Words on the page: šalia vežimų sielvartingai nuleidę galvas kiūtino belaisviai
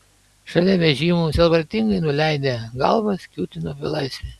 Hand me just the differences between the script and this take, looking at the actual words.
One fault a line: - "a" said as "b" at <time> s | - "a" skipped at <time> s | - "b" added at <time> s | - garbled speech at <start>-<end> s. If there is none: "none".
none